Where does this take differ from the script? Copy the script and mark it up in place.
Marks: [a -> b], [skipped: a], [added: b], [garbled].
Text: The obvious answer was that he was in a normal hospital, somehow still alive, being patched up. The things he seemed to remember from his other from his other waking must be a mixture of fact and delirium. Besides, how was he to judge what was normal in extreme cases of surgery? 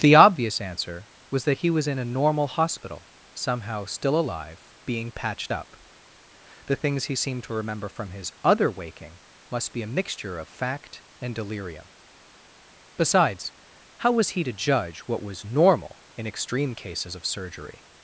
The obvious answer was that he was in a normal hospital, somehow still alive, being patched up. The things he seemed to remember from his other [skipped: from his other] waking must be a mixture of fact and delirium. Besides, how was he to judge what was normal in extreme cases of surgery?